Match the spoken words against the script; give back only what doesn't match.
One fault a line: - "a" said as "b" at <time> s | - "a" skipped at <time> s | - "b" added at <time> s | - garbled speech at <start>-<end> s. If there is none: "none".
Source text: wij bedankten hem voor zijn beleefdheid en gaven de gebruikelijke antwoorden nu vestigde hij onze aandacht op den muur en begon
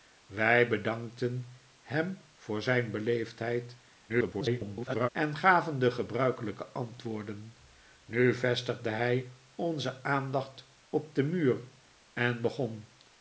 - garbled speech at 4.1-5.1 s